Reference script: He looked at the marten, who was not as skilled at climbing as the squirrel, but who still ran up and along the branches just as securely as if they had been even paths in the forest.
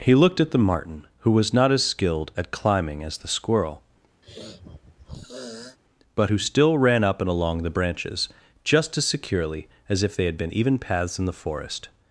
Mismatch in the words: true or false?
false